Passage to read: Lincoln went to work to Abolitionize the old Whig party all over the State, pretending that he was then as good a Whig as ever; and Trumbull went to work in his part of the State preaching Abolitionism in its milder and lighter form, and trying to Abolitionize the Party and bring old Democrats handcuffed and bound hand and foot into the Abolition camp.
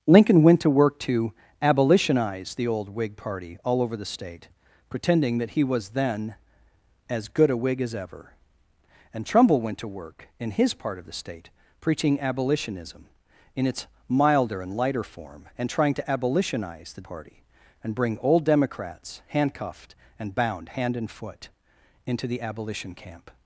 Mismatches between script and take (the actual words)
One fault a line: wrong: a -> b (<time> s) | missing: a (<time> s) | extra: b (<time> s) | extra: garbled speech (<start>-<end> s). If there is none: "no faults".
no faults